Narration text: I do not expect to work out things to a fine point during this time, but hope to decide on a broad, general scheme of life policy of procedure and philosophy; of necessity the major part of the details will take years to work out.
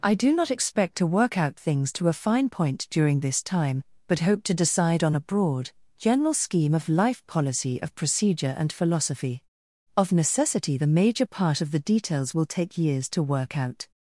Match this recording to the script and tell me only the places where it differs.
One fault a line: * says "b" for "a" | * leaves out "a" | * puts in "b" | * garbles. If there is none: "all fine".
all fine